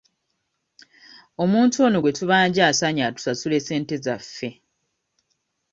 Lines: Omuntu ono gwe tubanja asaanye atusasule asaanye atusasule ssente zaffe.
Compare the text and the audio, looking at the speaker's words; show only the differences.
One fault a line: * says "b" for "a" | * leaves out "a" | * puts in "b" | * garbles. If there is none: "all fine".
* leaves out "asaanye atusasule"